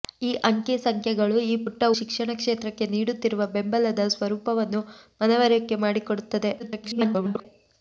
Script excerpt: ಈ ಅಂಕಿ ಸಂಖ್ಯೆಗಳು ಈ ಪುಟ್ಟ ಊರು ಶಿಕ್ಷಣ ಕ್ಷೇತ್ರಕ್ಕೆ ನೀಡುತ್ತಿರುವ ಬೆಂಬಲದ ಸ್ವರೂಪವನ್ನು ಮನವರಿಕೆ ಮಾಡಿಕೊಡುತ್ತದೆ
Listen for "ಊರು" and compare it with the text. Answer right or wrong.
wrong